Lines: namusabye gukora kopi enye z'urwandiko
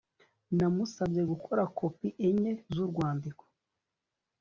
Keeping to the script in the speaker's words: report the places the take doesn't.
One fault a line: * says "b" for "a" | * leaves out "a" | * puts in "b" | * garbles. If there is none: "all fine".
all fine